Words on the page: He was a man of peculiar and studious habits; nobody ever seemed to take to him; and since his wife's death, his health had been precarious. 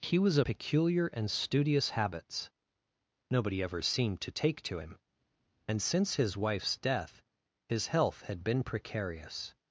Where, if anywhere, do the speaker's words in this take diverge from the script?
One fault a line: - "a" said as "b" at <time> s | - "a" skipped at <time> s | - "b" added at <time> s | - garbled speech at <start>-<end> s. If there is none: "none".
- "man of" skipped at 0.5 s